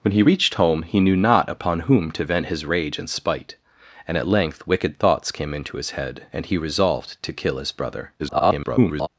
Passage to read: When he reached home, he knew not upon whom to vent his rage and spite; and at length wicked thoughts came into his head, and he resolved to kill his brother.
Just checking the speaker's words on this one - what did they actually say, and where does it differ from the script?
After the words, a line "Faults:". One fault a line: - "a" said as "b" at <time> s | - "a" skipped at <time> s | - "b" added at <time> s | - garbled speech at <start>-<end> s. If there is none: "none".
When he reached home, he knew not upon whom to vent his rage and spite; and at length wicked thoughts came into his head, and he resolved to kill his brother. [garbled]
Faults:
- garbled speech at 8.2-9.1 s